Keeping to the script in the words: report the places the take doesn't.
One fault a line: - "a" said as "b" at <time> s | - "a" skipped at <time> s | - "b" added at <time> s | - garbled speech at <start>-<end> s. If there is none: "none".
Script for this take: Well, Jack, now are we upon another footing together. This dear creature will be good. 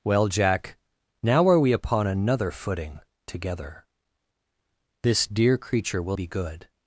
none